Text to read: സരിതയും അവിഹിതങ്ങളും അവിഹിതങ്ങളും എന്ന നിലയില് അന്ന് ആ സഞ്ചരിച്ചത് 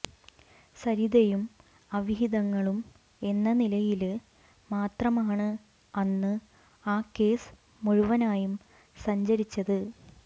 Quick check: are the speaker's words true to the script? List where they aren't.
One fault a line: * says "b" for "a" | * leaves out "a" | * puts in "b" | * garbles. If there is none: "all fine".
* leaves out "അവിഹിതങ്ങളും"
* puts in "മാത്രമാണ്"
* puts in "കേസ് മുഴുവനായും"